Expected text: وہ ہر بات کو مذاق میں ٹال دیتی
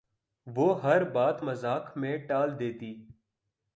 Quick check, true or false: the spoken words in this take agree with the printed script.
false